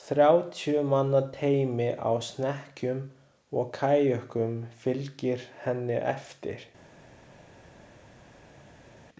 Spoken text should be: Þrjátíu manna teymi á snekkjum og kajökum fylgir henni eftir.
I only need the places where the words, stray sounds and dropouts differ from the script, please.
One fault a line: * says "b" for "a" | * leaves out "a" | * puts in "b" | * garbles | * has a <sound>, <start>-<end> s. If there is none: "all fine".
all fine